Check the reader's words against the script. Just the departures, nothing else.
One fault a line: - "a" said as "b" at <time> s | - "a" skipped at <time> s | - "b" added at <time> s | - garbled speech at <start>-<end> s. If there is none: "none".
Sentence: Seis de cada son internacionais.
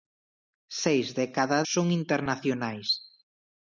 none